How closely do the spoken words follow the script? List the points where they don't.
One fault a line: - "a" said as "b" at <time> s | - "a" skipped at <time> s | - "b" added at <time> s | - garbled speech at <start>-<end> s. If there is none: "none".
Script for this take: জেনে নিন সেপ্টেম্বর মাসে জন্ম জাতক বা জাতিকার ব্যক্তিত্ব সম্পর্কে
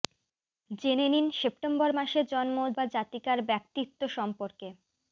- "জাতক" skipped at 2.6 s